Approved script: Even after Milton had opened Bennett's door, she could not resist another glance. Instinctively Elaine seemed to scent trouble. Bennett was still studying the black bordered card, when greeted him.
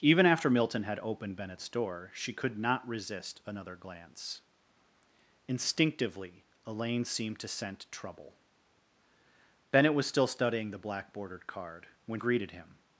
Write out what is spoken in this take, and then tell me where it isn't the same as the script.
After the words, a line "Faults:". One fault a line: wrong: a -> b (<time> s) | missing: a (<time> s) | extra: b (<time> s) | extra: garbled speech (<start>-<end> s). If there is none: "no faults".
Even after Milton had opened Bennett's door, she could not resist another glance. Instinctively Elaine seemed to scent trouble. Bennett was still studying the black bordered card, when greeted him.
Faults:
no faults